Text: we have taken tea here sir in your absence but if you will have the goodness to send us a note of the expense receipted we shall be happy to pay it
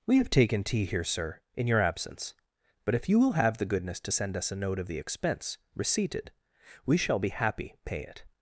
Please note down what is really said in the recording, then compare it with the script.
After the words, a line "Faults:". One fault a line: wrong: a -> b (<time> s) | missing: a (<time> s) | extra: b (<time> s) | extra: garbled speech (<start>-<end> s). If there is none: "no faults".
we have taken tea here sir in your absence but if you will have the goodness to send us a note of the expense receipted we shall be happy pay it
Faults:
missing: to (7.8 s)